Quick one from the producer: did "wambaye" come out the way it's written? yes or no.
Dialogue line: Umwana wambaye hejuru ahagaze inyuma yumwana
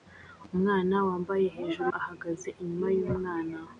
yes